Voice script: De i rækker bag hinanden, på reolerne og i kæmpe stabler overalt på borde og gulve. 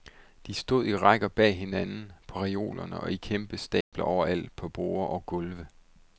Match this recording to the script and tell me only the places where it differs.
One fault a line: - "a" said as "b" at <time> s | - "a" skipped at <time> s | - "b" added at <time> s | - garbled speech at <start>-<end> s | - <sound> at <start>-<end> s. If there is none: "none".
- "stod" added at 0.5 s
- dropout at 3.8-3.9 s